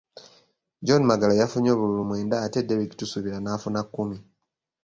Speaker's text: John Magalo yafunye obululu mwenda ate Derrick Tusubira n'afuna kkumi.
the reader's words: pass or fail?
pass